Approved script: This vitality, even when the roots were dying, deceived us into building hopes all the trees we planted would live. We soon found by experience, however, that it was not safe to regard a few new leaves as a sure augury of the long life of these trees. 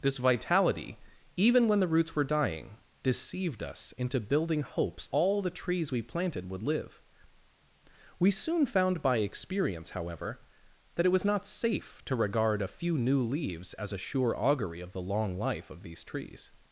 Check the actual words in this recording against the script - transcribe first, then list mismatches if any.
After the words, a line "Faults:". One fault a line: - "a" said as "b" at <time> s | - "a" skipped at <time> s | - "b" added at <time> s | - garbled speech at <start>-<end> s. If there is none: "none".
This vitality, even when the roots were dying, deceived us into building hopes all the trees we planted would live. We soon found by experience, however, that it was not safe to regard a few new leaves as a sure augury of the long life of these trees.
Faults:
none